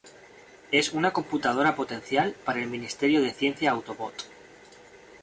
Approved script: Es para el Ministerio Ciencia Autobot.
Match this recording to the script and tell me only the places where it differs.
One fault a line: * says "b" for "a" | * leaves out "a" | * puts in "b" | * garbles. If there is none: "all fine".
* puts in "una computadora potencial"
* puts in "de"